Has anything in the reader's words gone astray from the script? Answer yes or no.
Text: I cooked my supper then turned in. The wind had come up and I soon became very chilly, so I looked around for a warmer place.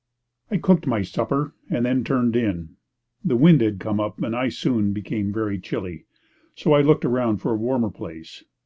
yes